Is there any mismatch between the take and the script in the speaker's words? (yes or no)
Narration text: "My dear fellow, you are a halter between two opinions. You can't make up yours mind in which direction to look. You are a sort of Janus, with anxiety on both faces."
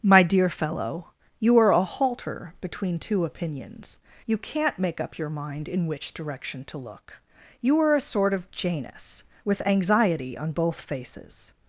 yes